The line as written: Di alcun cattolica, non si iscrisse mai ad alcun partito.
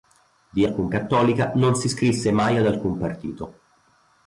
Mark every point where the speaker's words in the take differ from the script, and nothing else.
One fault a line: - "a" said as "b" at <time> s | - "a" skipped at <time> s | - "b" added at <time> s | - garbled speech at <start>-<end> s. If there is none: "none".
none